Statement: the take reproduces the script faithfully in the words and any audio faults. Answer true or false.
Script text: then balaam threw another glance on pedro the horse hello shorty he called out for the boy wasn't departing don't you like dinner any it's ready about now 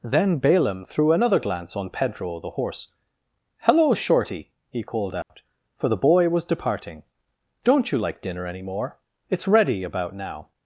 false